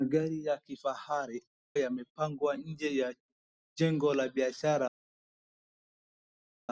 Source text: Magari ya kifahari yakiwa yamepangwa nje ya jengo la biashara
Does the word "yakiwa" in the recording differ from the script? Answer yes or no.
yes